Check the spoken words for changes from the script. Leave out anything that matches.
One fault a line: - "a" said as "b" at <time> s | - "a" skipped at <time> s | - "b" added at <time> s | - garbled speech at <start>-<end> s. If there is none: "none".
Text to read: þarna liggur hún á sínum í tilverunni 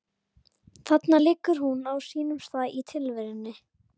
- "stað" added at 2.4 s